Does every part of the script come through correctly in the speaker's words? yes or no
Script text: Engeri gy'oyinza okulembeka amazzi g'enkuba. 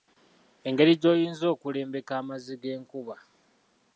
yes